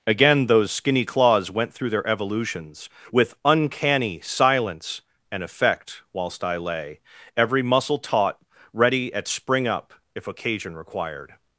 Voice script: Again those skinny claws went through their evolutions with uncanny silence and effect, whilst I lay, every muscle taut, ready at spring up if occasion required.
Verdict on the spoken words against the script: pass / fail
pass